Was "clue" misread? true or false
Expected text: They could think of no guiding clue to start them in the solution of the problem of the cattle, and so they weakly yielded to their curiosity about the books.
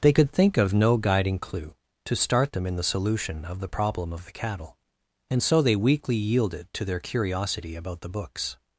false